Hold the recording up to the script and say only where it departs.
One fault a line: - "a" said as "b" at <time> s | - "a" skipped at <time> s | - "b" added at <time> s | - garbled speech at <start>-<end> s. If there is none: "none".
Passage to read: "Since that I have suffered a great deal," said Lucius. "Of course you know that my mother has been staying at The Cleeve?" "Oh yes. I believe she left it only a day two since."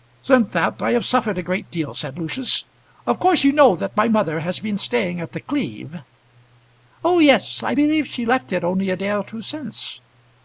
- "or" added at 9.1 s